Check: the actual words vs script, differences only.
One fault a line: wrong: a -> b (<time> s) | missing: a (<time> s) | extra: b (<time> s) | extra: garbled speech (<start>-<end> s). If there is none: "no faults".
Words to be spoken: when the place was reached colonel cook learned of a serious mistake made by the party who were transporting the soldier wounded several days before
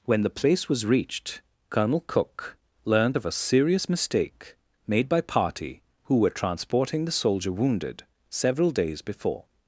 missing: the (5.2 s)